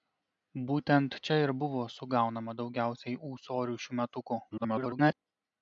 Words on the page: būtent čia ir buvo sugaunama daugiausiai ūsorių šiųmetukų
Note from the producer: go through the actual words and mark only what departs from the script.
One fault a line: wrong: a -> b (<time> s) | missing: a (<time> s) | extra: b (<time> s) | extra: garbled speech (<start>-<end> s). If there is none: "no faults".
extra: garbled speech (4.5-5.1 s)